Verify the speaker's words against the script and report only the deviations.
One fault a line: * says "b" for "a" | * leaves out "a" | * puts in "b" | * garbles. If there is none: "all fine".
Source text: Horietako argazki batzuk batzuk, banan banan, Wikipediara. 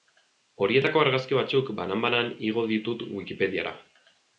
* says "banan" for "batzuk"
* says "igo ditut" for "banan"